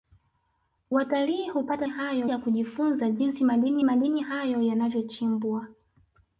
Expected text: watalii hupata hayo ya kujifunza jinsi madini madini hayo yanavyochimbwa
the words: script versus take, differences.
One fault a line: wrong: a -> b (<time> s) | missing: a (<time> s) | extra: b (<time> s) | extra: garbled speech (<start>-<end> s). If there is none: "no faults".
no faults